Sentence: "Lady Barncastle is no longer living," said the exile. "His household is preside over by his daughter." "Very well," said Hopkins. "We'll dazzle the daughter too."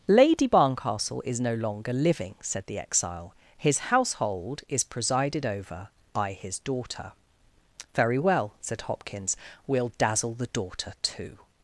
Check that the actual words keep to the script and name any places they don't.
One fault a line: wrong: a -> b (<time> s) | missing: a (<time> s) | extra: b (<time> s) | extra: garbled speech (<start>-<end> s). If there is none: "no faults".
wrong: preside -> presided (4.8 s)